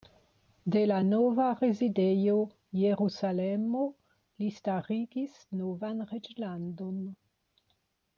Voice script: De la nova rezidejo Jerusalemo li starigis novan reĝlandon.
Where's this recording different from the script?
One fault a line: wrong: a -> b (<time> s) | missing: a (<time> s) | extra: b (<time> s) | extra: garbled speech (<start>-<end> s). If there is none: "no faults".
no faults